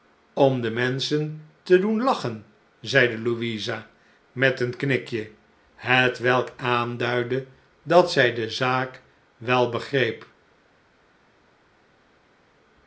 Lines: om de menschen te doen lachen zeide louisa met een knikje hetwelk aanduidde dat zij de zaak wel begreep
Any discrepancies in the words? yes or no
no